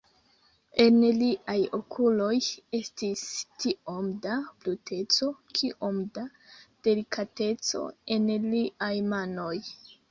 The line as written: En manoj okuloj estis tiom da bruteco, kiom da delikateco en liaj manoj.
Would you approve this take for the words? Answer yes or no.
no